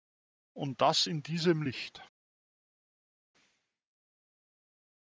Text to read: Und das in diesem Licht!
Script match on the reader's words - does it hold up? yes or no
yes